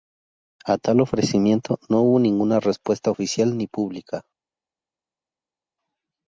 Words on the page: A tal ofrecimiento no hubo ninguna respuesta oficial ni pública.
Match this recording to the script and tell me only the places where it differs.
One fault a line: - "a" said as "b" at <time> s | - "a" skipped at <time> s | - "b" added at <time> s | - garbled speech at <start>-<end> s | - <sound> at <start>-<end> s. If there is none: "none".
none